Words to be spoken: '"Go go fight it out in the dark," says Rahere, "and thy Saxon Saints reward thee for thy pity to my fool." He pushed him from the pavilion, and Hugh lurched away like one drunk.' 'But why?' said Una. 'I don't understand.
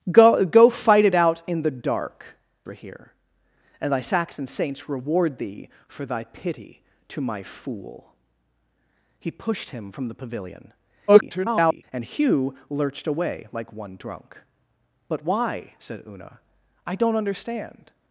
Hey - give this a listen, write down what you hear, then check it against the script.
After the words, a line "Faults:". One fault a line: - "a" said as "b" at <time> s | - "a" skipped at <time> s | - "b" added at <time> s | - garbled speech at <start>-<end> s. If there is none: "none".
'"Go go fight it out in the dark," Rahere, "and thy Saxon Saints reward thee for thy pity to my fool." He pushed him from the pavilion, [garbled] and Hugh lurched away like one drunk.' 'But why?' said Una. 'I don't understand.
Faults:
- "says" skipped at 2.4 s
- garbled speech at 11.1-11.8 s